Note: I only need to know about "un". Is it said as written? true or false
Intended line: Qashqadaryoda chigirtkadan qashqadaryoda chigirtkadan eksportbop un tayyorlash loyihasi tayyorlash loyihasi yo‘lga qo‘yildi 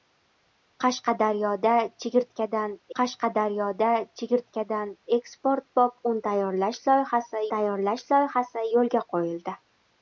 true